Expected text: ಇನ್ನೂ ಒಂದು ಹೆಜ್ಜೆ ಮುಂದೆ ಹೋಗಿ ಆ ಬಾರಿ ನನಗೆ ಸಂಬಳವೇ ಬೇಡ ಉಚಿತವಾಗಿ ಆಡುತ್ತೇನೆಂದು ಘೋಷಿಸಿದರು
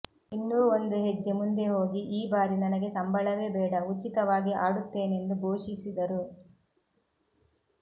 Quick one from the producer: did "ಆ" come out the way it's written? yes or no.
no